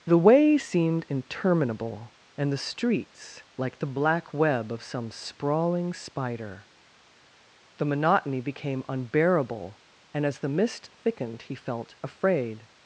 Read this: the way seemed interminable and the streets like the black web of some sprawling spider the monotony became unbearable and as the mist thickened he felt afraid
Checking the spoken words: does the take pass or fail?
pass